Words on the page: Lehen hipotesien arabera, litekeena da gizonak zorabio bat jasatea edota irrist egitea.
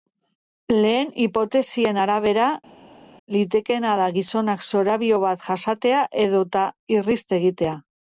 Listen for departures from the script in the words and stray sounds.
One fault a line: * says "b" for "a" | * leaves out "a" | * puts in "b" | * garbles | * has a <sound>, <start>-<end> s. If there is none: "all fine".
all fine